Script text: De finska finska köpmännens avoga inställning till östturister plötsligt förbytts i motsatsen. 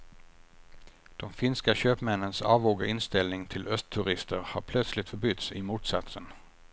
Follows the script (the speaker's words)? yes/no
no